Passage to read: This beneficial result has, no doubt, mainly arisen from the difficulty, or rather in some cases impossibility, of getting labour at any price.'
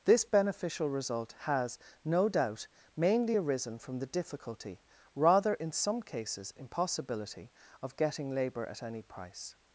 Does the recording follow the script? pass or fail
fail